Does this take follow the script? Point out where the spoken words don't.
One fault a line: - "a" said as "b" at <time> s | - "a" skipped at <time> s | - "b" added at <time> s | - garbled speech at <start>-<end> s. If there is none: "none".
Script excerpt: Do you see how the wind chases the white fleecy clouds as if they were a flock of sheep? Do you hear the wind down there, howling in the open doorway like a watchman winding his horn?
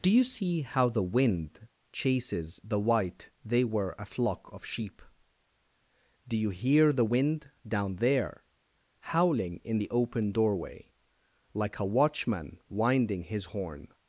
- "fleecy clouds as if" skipped at 3.3 s